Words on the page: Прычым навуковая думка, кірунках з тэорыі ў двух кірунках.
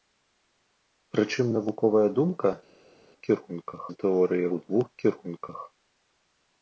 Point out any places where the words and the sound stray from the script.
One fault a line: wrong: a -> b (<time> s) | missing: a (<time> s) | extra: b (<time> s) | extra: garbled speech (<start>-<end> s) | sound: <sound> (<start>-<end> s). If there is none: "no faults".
no faults